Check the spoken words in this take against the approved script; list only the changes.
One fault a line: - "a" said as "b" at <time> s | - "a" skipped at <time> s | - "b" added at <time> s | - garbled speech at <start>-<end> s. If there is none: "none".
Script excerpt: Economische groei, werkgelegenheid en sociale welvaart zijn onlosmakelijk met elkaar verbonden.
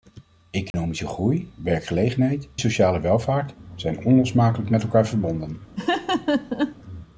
- "en" skipped at 2.5 s